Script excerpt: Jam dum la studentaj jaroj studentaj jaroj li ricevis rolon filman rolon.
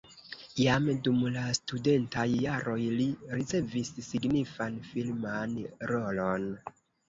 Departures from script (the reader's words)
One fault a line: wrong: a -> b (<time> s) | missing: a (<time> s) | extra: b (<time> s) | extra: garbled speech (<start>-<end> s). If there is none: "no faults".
missing: studentaj jaroj (2.8 s)
wrong: rolon -> signifan (4.1 s)